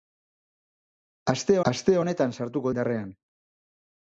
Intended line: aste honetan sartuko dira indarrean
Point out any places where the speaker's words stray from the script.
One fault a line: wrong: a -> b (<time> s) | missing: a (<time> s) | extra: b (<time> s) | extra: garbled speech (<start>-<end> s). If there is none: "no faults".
extra: aste (1.7 s)
missing: dira (2.7 s)